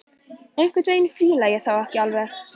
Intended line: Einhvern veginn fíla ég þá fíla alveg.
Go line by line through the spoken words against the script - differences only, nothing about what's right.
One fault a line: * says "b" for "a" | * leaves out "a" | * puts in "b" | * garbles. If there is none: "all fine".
* says "ekki" for "fíla"